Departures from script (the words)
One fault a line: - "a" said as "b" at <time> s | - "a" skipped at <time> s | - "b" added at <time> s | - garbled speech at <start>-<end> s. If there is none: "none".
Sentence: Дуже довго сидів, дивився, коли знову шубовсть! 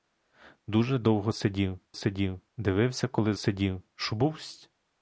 - "сидів" added at 1.9 s
- "знову" said as "сидів" at 3.3 s